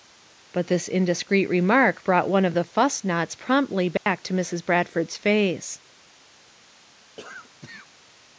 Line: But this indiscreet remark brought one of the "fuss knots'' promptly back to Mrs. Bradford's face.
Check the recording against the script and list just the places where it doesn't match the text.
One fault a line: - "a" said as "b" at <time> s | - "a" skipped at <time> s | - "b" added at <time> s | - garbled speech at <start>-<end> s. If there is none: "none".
none